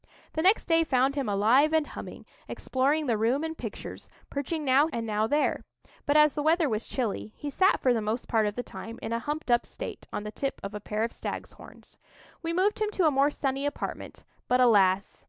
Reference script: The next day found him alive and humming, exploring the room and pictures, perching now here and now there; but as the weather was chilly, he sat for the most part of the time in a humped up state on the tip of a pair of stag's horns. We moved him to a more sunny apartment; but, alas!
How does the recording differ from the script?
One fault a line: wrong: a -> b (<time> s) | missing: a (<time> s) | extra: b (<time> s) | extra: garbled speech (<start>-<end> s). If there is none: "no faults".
missing: here (4.9 s)